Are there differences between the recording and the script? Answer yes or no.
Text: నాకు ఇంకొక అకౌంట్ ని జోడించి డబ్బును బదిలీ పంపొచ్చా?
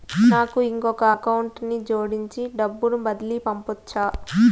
no